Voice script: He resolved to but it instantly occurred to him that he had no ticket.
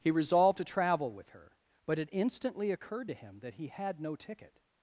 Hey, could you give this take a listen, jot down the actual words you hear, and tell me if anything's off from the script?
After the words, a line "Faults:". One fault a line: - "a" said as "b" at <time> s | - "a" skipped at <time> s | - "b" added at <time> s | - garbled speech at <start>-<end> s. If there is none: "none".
He resolved to travel with her, but it instantly occurred to him that he had no ticket.
Faults:
- "travel with her" added at 0.6 s